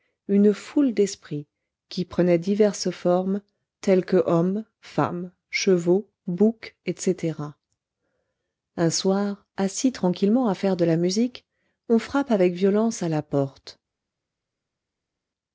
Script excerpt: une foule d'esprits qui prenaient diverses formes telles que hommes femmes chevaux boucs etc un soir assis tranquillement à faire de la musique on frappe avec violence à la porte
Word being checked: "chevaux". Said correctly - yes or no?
yes